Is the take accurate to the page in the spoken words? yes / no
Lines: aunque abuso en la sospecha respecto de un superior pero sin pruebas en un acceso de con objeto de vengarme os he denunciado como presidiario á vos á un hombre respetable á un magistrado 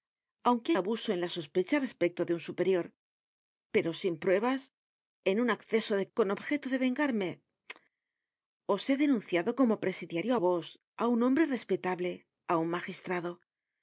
yes